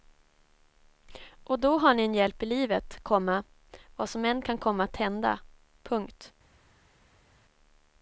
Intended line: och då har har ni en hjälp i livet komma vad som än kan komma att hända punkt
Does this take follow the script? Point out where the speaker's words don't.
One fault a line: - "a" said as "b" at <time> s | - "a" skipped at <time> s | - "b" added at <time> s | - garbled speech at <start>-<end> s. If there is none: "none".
- "har" skipped at 1.9 s